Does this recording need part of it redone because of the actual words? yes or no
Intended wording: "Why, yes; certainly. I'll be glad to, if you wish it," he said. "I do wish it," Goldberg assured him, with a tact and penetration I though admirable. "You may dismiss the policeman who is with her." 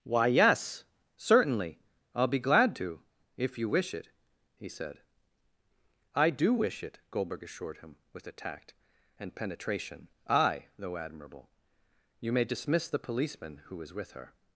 no